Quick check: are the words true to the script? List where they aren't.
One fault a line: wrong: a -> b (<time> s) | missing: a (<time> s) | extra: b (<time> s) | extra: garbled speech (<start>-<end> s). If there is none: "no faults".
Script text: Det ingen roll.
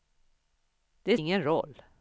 no faults